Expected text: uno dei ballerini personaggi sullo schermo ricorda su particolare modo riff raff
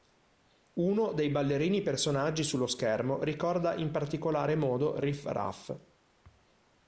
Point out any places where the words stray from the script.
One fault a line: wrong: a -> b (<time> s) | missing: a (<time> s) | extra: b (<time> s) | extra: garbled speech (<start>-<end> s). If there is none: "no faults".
wrong: su -> in (3.7 s)